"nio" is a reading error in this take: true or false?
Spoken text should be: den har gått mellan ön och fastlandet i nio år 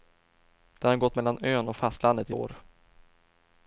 true